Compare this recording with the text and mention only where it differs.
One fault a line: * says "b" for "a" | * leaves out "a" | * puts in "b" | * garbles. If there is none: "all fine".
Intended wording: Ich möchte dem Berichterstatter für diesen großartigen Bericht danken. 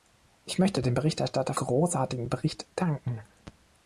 * leaves out "für diesen"